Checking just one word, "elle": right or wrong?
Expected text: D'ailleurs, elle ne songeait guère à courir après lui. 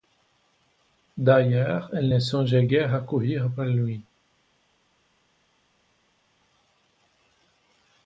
right